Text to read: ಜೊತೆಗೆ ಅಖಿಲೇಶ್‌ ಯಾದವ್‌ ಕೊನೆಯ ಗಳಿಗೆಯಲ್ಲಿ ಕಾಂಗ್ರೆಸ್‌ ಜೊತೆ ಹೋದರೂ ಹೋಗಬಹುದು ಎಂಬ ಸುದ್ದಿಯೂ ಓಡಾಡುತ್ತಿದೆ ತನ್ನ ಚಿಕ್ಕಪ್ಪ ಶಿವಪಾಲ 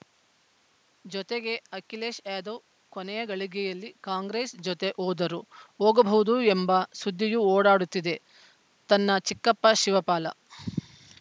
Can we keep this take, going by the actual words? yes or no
yes